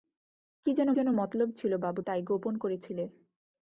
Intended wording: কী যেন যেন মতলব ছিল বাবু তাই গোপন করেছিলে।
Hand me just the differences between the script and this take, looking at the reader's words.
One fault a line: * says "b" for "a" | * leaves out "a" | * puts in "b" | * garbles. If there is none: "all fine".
all fine